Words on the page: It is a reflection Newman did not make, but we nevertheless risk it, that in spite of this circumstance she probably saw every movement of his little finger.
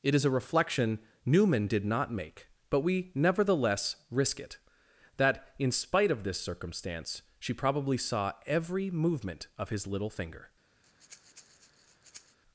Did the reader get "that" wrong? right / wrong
right